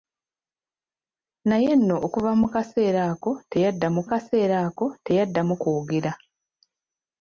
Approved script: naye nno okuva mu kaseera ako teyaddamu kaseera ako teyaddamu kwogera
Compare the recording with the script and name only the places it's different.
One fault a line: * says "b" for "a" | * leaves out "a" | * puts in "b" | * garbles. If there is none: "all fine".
all fine